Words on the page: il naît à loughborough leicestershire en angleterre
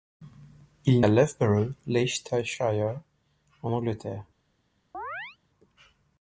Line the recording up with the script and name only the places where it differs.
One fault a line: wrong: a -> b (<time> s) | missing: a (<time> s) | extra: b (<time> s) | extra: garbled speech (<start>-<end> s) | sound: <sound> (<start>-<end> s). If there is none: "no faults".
missing: naît (1.0 s)
sound: chirp (4.9-5.4 s)